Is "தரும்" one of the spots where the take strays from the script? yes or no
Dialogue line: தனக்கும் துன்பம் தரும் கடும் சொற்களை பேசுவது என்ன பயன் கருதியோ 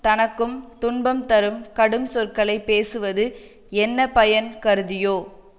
no